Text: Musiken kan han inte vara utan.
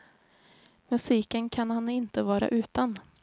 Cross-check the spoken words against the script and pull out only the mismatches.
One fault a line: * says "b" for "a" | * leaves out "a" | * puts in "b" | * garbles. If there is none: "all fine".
all fine